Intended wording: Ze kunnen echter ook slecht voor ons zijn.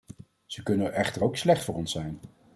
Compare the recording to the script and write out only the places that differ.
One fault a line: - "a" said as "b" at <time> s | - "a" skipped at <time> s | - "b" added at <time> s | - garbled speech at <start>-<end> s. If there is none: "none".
none